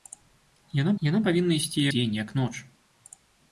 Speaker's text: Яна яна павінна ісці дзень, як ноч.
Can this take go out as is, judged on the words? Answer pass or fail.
pass